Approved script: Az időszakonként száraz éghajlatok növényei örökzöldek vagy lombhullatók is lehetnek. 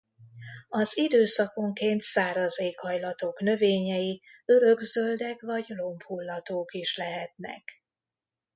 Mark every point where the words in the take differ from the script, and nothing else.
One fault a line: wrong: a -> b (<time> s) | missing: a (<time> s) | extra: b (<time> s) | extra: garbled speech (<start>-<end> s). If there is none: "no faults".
no faults